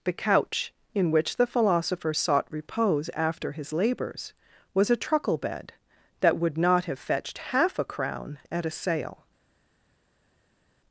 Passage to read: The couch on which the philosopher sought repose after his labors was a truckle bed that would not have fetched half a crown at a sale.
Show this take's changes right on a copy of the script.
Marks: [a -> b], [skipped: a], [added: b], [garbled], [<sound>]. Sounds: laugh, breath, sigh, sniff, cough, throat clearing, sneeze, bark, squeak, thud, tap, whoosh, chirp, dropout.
The couch [on -> in] which the philosopher sought repose after his labors was a truckle bed that would not have fetched half a crown at a sale.